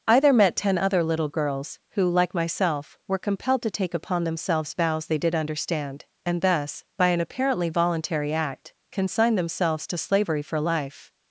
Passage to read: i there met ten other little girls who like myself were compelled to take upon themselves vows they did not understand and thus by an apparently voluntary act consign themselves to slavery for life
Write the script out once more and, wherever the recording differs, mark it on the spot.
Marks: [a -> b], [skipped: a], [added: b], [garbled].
i there met ten other little girls who like myself were compelled to take upon themselves vows they did [skipped: not] understand and thus by an apparently voluntary act consign themselves to slavery for life